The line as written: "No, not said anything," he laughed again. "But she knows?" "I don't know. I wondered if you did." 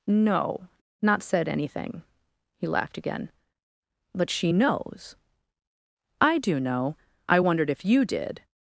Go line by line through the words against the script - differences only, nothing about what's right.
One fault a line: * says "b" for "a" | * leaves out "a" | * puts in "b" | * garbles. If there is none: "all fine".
* says "do" for "don't"